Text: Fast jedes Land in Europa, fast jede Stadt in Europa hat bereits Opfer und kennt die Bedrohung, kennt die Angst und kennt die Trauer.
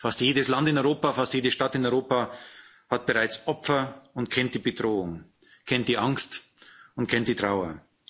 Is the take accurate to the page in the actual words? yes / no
yes